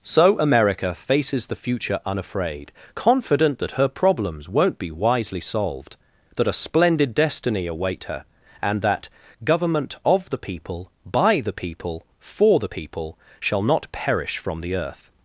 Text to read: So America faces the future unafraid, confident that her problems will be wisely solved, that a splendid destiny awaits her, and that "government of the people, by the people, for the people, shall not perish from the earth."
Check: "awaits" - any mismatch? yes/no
yes